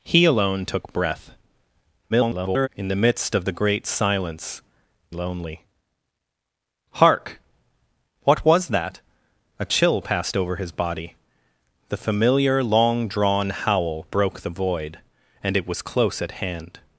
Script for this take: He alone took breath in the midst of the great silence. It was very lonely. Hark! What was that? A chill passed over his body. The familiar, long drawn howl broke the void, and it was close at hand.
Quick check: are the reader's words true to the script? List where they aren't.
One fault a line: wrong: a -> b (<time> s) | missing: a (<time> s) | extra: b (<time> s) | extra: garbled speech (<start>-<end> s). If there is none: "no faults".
extra: garbled speech (2.1-2.7 s)
missing: It was very (4.6 s)